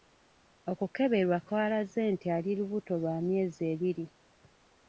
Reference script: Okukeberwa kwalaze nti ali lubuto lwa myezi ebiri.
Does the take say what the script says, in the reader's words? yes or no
yes